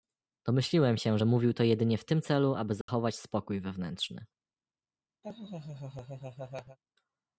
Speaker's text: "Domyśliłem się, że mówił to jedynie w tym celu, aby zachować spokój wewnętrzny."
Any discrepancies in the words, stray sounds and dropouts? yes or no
yes